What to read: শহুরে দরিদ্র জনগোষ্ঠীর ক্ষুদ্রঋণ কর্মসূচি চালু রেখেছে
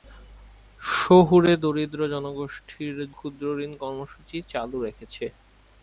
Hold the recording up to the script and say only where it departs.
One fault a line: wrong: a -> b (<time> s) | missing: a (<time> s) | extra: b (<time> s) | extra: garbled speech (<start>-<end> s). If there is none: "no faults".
no faults